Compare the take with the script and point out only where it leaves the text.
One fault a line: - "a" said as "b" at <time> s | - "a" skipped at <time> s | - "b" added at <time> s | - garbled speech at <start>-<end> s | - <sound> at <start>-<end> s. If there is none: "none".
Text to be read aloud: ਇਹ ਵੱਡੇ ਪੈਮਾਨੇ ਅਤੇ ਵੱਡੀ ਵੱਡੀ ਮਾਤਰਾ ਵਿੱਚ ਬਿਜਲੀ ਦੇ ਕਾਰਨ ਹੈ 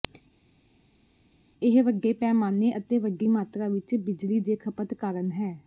- "ਵੱਡੀ" skipped at 3.3 s
- "ਖਪਤ" added at 4.6 s